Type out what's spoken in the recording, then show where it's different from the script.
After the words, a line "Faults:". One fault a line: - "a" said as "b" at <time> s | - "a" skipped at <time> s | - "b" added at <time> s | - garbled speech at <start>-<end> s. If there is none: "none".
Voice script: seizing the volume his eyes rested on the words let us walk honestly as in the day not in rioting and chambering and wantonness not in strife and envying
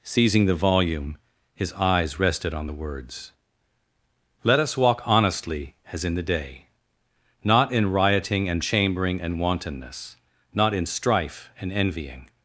seizing the volume his eyes rested on the words let us walk honestly as in the day not in rioting and chambering and wantonness not in strife and envying
Faults:
none